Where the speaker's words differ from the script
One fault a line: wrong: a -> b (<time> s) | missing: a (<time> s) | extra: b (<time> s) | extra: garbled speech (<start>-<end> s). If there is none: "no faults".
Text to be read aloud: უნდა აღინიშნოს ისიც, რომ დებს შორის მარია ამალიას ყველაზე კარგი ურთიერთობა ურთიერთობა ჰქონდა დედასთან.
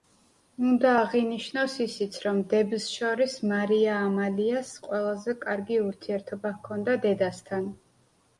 missing: ურთიერთობა (6.5 s)